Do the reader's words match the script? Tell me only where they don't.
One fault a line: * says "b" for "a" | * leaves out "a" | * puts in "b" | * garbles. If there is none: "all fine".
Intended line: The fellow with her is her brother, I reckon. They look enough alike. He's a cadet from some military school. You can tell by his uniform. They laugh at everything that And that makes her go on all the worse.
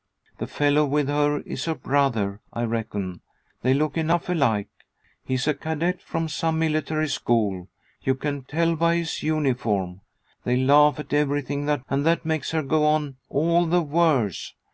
all fine